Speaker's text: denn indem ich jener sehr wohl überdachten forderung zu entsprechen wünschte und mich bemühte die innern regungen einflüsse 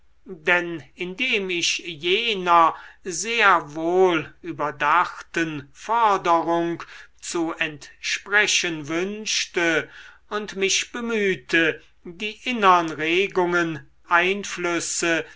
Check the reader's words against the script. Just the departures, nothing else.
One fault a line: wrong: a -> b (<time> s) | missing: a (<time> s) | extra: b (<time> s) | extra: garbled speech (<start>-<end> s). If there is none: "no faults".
no faults